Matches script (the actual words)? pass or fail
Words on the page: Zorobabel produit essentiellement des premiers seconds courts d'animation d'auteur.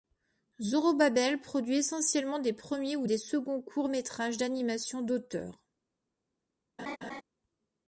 fail